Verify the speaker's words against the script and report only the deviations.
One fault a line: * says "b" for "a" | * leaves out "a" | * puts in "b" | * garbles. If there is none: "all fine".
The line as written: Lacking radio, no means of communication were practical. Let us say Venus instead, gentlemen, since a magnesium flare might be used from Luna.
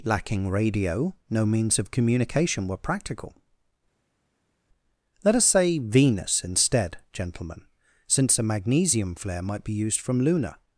all fine